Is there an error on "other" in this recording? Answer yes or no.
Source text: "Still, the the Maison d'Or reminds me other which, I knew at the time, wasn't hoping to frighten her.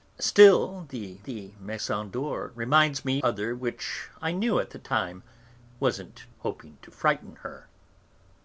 no